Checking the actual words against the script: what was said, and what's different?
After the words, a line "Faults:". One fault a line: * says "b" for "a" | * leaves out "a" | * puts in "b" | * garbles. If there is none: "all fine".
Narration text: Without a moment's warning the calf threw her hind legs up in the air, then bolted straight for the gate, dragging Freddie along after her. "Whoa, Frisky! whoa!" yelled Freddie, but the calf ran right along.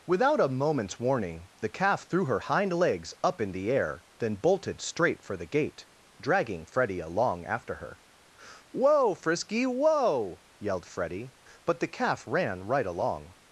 Without a moment's warning the calf threw her hind legs up in the air, then bolted straight for the gate, dragging Freddie along after her. "Whoa, Frisky! whoa!" yelled Freddie, but the calf ran right along.
Faults:
all fine